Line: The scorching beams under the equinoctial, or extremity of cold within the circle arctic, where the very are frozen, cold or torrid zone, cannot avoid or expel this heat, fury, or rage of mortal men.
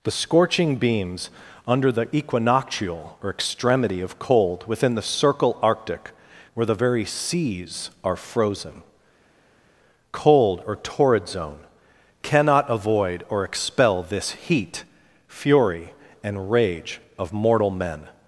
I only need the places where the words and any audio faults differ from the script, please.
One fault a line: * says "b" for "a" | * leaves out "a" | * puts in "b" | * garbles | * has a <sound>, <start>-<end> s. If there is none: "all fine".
* puts in "seas"
* says "and" for "or"